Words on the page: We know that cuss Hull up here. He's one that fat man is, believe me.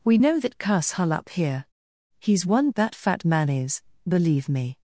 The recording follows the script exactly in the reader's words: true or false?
true